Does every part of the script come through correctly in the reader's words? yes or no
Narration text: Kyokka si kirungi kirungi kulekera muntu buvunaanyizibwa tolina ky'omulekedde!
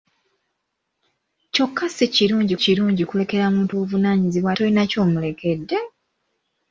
yes